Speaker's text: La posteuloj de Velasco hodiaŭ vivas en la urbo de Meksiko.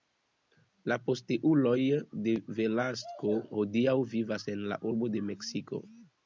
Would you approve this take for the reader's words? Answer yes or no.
yes